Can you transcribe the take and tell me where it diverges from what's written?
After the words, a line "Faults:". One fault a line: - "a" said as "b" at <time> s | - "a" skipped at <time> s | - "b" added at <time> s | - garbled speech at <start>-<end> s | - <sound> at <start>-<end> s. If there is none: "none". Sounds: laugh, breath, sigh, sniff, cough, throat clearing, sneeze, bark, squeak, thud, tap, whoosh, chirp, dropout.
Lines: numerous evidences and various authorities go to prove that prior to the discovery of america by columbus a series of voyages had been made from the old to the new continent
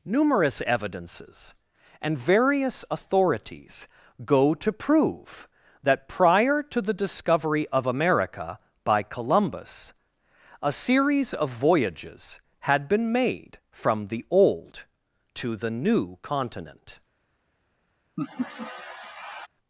numerous evidences and various authorities go to prove that prior to the discovery of america by columbus a series of voyages had been made from the old to the new continent
Faults:
- laugh at 18.2-19.5 s